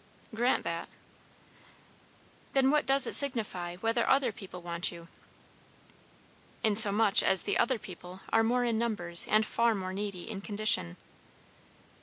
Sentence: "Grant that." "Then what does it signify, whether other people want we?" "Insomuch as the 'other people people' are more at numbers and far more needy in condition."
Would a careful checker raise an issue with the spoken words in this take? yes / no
yes